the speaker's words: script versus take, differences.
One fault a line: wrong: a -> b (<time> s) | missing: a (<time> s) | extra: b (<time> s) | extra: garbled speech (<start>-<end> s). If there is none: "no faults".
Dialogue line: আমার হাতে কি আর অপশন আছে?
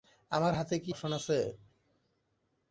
missing: আর (0.9 s)